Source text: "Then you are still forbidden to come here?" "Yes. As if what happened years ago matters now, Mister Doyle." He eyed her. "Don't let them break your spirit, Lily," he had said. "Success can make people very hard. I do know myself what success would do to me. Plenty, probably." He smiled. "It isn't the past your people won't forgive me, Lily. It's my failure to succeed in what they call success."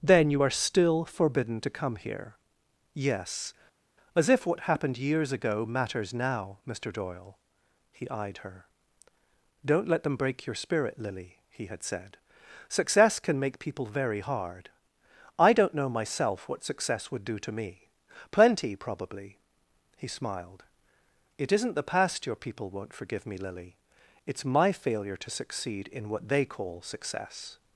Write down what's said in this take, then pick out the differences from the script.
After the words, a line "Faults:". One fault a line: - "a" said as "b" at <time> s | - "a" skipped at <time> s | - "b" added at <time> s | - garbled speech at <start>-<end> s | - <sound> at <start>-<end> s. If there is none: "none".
"Then you are still forbidden to come here?" "Yes. As if what happened years ago matters now, Mister Doyle." He eyed her. "Don't let them break your spirit, Lily," he had said. "Success can make people very hard. I don't know myself what success would do to me. Plenty, probably." He smiled. "It isn't the past your people won't forgive me, Lily. It's my failure to succeed in what they call success."
Faults:
- "do" said as "don't" at 15.5 s